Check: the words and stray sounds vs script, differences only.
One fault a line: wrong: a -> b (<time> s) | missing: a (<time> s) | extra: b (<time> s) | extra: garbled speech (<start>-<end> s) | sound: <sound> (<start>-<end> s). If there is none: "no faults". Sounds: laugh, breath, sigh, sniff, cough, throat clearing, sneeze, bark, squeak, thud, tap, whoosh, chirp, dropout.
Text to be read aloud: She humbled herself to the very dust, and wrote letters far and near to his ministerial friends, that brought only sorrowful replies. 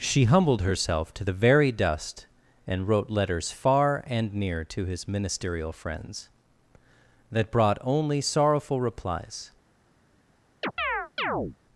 sound: chirp (10.6-11.6 s)